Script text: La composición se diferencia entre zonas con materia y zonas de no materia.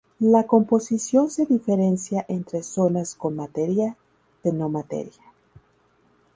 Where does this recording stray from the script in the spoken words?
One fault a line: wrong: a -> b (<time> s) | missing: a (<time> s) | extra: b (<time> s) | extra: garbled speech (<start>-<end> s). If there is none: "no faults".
missing: y zonas (4.0 s)